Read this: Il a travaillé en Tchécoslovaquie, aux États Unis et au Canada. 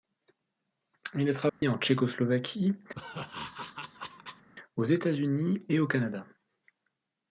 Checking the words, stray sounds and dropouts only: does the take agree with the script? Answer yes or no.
no